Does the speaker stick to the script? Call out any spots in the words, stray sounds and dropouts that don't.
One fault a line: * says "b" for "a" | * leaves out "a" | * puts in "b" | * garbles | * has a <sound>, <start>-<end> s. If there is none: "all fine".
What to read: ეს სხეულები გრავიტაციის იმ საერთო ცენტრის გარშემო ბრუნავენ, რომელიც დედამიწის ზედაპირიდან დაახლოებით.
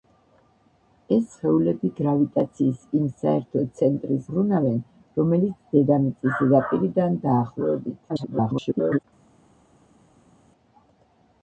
* leaves out "გარშემო"
* garbles